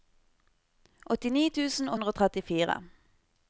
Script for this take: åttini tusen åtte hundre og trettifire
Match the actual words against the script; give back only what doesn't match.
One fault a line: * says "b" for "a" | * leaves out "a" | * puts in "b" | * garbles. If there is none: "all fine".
* leaves out "åtte"